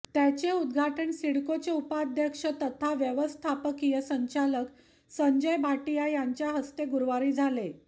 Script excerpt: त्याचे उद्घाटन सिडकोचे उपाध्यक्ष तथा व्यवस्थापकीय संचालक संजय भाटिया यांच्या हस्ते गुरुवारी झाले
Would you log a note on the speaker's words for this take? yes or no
no